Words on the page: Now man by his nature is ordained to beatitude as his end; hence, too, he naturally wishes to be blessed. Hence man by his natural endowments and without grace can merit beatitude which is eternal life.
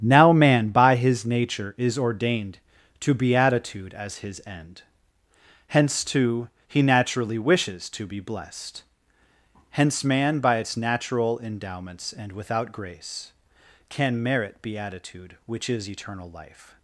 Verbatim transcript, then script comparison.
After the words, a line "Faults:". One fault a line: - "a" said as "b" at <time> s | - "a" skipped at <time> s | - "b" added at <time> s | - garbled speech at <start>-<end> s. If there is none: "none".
Now man by his nature is ordained to beatitude as his end; hence, too, he naturally wishes to be blessed. Hence man by its natural endowments and without grace can merit beatitude which is eternal life.
Faults:
- "his" said as "its" at 10.6 s